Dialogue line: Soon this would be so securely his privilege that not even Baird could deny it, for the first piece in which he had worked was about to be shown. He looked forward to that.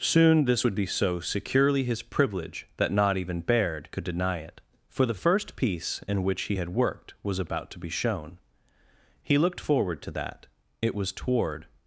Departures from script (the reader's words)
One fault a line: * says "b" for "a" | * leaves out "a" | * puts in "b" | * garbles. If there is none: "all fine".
* puts in "It was toward"